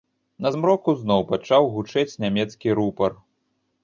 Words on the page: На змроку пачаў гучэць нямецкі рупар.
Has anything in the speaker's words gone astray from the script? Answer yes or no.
yes